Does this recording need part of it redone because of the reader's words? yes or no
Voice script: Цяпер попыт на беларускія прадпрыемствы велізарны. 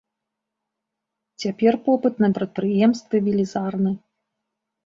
yes